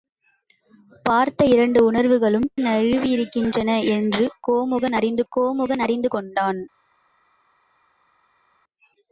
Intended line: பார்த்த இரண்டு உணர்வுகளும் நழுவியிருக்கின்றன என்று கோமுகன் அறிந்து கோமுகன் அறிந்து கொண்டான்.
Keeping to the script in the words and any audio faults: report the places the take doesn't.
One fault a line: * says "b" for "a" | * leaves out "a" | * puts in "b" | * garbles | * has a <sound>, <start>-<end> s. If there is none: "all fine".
all fine